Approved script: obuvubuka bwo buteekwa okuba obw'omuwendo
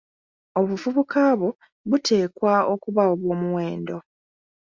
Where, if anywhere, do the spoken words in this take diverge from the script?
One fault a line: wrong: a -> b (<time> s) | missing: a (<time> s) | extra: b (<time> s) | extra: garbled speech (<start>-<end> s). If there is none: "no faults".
no faults